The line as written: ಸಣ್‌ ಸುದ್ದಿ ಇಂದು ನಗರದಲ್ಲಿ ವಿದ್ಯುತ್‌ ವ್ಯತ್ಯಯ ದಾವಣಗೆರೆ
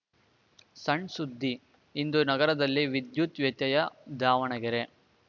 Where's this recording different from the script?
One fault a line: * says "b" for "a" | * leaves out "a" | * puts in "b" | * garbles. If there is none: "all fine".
all fine